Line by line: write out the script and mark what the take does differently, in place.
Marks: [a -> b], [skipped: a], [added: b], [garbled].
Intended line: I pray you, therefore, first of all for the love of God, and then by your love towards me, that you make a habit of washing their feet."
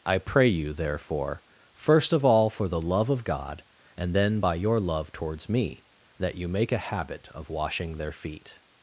I pray you, therefore, first of all for the love of God, and then by your love towards me, that you make a habit of washing their feet."